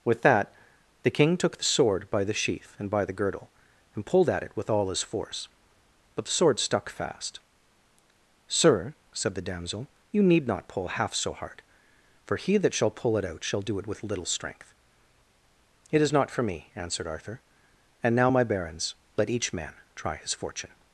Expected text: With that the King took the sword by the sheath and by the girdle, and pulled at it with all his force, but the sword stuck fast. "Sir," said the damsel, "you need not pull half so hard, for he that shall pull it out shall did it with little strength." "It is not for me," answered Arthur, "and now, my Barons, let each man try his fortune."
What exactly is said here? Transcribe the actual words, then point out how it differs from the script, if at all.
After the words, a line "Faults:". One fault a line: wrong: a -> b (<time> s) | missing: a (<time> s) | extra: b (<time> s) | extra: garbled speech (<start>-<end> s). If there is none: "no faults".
With that the King took the sword by the sheath and by the girdle, and pulled at it with all his force, but the sword stuck fast. "Sir," said the damsel, "you need not pull half so hard, for he that shall pull it out shall do it with little strength." "It is not for me," answered Arthur, "and now, my Barons, let each man try his fortune."
Faults:
wrong: did -> do (13.6 s)